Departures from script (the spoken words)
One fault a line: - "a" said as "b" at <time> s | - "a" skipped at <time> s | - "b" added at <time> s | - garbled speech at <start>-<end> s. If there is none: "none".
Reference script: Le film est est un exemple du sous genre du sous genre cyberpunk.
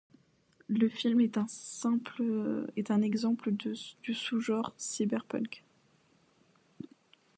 - "est" skipped at 1.4 s
- "du sous genre" skipped at 4.7 s